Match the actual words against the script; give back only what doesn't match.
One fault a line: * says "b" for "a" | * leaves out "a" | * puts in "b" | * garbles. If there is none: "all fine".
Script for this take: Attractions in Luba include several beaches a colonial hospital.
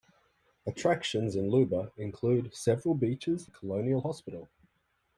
all fine